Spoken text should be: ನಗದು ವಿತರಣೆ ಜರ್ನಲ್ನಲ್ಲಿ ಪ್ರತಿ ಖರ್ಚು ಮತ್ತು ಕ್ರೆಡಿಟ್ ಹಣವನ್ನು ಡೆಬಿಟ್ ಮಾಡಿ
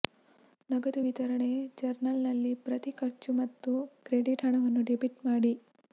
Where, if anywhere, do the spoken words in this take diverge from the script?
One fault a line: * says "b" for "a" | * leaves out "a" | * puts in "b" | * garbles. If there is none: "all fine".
all fine